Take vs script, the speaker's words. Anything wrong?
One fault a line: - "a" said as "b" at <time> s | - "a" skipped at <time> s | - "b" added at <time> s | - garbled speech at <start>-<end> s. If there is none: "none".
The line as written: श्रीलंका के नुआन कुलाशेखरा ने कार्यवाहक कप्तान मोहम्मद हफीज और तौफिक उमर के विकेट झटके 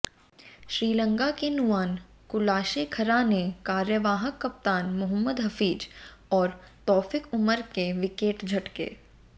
none